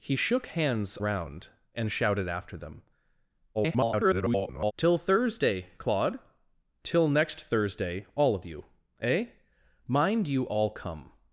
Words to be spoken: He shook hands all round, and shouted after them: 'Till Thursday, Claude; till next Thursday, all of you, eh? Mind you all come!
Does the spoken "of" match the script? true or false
true